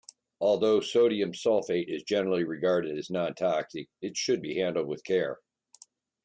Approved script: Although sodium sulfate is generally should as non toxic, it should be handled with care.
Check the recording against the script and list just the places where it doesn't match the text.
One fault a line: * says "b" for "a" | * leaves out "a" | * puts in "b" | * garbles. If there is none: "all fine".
* says "regarded" for "should"